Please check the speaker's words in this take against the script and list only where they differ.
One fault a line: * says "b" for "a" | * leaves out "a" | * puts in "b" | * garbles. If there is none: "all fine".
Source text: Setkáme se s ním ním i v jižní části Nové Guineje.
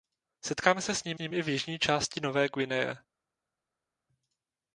all fine